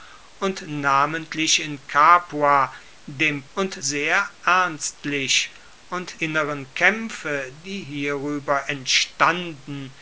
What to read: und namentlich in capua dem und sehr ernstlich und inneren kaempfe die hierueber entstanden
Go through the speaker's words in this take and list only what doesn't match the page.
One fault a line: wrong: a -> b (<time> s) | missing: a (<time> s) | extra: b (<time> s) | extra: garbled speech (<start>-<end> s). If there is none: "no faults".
no faults